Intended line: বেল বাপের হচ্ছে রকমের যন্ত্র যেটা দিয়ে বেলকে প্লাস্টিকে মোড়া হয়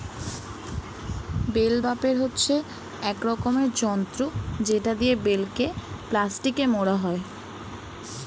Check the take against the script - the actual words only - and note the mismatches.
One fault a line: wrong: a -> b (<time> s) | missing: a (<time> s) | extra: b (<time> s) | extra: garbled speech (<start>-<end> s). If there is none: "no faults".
extra: এক (3.0 s)